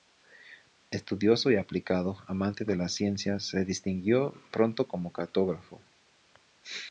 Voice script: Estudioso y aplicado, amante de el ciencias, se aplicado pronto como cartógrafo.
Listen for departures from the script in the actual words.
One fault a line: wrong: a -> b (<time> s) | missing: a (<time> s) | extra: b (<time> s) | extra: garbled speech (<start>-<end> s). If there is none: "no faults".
wrong: el -> las (2.8 s)
wrong: aplicado -> distinguió (3.6 s)